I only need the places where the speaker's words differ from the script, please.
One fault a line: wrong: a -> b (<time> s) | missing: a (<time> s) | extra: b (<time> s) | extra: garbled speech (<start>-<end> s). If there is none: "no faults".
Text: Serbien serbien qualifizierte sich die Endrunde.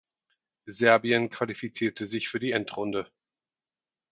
missing: serbien (1.3 s)
extra: für (2.3 s)